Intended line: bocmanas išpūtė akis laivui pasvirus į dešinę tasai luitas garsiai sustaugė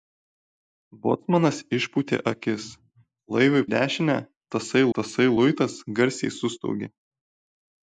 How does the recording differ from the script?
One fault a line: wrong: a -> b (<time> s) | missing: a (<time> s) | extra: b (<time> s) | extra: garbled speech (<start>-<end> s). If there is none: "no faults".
missing: pasvirus (3.6 s)
extra: tasai (5.0 s)